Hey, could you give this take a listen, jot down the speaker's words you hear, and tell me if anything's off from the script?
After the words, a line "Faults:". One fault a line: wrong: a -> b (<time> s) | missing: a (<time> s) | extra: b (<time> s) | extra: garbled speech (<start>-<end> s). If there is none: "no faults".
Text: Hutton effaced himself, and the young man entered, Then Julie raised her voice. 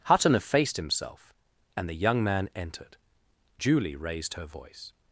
Hutton effaced himself, and the young man entered, Julie raised her voice.
Faults:
missing: Then (3.0 s)